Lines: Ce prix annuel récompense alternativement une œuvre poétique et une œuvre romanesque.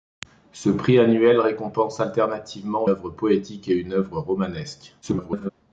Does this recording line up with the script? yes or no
no